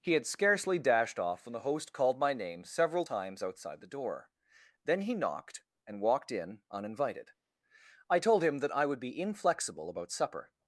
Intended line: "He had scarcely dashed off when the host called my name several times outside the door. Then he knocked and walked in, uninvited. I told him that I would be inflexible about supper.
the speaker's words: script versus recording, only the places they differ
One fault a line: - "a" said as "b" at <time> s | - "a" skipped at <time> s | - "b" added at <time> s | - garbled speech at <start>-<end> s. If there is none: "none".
none